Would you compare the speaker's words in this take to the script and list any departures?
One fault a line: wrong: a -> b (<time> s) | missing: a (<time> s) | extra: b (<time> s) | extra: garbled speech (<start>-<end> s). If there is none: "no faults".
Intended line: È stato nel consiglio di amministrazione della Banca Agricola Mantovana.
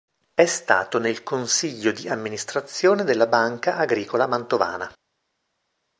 no faults